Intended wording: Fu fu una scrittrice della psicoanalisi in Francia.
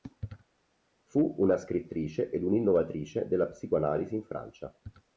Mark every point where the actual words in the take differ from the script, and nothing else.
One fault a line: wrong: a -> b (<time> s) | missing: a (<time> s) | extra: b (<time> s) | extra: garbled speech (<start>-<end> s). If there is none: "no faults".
missing: fu (1.4 s)
extra: ed un'innovatrice (2.3 s)